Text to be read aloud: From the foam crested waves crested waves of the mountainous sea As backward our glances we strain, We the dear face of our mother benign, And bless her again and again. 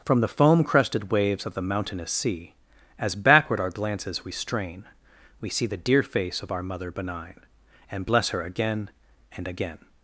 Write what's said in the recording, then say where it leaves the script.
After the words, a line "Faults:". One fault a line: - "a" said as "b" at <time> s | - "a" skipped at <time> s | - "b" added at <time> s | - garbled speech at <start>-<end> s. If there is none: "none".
From the foam crested waves of the mountainous sea As backward our glances we strain, We see the dear face of our mother benign, And bless her again and again.
Faults:
- "crested waves" skipped at 1.4 s
- "see" added at 5.5 s